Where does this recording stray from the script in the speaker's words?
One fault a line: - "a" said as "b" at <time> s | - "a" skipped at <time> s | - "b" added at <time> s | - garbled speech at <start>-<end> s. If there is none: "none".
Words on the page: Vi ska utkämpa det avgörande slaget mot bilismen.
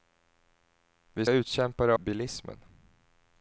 - "ska" skipped at 1.2 s
- "avgörande slaget mot" skipped at 2.0 s